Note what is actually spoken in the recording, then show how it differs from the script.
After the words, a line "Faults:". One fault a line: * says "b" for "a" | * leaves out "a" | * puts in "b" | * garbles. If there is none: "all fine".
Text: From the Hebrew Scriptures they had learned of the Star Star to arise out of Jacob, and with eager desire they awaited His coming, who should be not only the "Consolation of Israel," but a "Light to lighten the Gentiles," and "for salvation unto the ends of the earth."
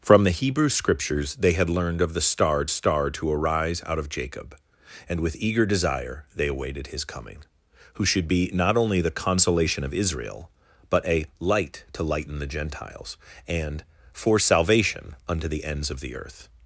From the Hebrew Scriptures they had learned of the Star Star to arise out of Jacob, and with eager desire they awaited His coming, who should be not only the "Consolation of Israel," but a "Light to lighten the Gentiles," and "for salvation unto the ends of the earth."
Faults:
all fine